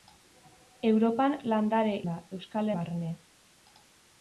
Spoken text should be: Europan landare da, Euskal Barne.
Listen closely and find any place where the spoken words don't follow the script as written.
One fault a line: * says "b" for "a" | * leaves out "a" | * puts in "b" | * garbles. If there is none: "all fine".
all fine